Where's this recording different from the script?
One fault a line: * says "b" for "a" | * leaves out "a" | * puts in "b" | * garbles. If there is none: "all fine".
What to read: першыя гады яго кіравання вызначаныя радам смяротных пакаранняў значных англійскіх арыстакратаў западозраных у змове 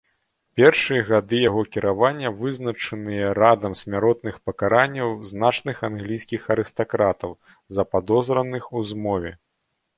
all fine